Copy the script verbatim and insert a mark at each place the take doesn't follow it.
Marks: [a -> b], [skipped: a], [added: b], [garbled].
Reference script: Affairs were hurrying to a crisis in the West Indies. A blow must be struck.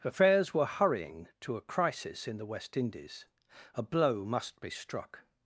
Affairs were hurrying to a crisis in the West Indies. A blow must be struck.